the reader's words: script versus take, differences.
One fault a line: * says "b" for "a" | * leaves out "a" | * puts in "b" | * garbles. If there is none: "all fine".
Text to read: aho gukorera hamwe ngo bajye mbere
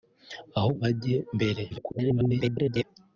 * leaves out "gukorera hamwe ngo"
* garbles